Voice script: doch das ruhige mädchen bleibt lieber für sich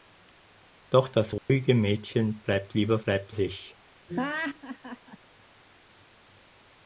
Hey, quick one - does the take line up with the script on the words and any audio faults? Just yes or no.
no